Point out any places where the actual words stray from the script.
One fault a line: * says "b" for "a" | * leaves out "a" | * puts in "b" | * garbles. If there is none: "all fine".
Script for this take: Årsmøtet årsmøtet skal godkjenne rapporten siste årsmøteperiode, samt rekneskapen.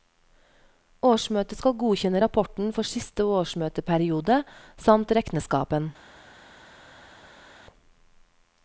* leaves out "årsmøtet"
* puts in "for"